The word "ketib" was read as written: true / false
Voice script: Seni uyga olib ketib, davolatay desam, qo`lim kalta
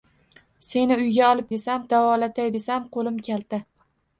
false